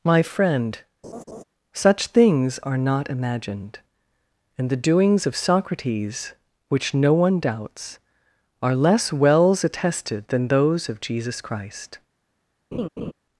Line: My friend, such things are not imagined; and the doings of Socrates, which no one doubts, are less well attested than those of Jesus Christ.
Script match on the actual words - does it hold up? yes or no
no